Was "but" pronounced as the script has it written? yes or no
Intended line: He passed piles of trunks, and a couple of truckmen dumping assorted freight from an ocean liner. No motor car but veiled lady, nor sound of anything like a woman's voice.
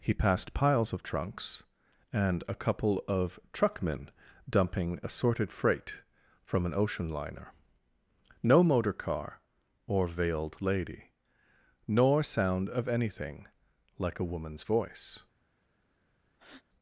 no